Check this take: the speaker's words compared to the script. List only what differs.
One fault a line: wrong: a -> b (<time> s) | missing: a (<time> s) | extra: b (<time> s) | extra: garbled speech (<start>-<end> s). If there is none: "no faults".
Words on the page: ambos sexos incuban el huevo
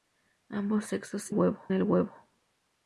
wrong: incuban -> huevo (1.3 s)